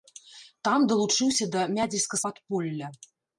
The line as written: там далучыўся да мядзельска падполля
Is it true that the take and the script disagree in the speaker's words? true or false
false